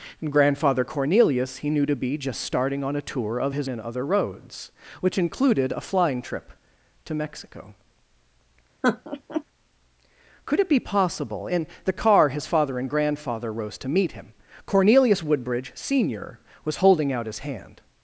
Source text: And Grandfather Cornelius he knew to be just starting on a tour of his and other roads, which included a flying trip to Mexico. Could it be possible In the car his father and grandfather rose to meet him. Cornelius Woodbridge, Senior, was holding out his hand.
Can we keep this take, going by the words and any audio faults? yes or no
no